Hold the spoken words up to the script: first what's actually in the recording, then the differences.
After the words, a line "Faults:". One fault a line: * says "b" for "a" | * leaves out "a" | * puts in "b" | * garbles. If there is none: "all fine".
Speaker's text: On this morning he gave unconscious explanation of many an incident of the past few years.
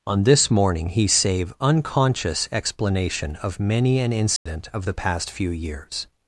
On this morning he save unconscious explanation of many an incident of the past few years.
Faults:
* says "save" for "gave"